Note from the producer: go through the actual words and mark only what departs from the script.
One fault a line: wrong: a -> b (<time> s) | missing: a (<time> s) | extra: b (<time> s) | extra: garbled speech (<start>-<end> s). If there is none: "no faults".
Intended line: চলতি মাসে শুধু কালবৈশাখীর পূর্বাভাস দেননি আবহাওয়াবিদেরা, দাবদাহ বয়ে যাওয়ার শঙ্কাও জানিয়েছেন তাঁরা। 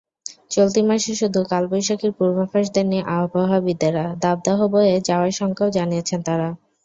no faults